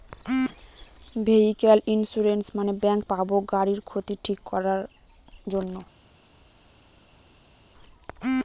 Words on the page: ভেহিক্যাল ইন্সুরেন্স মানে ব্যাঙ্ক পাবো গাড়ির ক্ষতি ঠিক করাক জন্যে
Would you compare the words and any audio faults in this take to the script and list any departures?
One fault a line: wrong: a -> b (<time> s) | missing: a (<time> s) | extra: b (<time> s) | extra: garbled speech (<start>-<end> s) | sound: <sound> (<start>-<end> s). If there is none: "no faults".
no faults